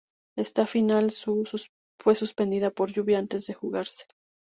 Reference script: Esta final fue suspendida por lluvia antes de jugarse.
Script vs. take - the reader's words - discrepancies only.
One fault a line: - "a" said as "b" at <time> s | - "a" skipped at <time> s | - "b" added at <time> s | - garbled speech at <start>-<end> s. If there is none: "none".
none